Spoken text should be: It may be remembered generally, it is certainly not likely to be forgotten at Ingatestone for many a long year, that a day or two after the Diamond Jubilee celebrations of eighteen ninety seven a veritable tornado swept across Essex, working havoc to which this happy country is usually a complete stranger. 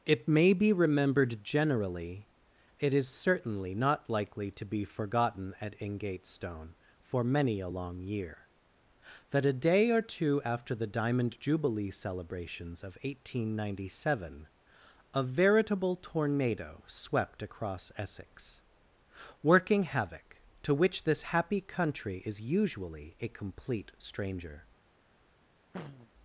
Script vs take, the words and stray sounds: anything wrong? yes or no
yes